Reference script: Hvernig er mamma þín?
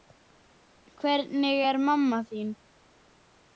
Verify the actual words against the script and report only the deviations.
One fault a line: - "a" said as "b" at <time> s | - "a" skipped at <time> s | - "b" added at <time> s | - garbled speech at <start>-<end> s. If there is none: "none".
none